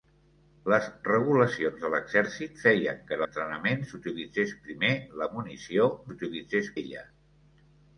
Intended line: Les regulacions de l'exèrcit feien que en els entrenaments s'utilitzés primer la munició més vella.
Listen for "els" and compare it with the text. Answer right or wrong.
wrong